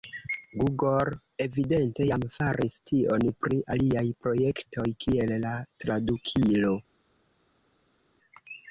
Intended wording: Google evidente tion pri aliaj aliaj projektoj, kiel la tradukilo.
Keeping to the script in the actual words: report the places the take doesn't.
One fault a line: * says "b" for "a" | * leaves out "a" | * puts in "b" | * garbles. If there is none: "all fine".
* puts in "jam faris"
* leaves out "aliaj"